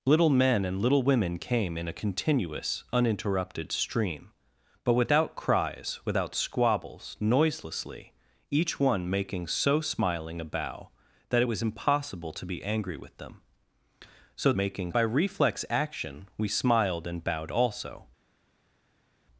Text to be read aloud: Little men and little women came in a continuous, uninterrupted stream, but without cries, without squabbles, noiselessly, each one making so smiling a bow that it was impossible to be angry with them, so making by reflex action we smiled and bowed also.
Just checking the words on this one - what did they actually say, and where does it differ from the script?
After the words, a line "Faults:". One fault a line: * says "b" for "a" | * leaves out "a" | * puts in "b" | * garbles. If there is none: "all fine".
Little men and little women came in a continuous, uninterrupted stream, but without cries, without squabbles, noiselessly, each one making so smiling a bow that it was impossible to be angry with them, so making by reflex action we smiled and bowed also.
Faults:
all fine